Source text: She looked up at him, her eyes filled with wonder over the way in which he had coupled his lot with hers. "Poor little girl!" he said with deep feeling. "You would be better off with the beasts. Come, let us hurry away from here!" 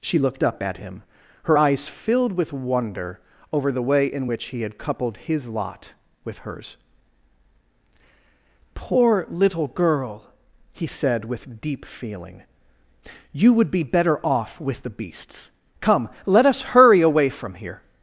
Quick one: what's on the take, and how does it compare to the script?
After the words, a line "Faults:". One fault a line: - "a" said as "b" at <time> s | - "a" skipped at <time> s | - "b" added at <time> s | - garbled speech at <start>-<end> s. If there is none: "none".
She looked up at him, her eyes filled with wonder over the way in which he had coupled his lot with hers. "Poor little girl!" he said with deep feeling. "You would be better off with the beasts. Come, let us hurry away from here!"
Faults:
none